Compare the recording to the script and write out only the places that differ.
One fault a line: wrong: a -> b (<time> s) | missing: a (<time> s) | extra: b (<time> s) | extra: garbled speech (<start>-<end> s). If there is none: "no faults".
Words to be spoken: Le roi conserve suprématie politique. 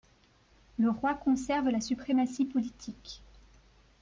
extra: la (1.7 s)